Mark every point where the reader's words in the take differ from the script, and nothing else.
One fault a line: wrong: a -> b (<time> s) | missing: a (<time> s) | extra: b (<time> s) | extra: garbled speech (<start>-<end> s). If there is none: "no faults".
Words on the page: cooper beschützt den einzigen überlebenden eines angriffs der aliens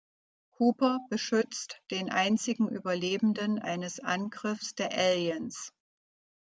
no faults